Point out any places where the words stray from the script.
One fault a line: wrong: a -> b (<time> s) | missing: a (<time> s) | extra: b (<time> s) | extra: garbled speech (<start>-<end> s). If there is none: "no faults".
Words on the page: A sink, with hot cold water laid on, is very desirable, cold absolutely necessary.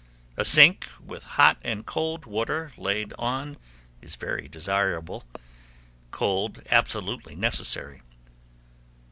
extra: and (1.6 s)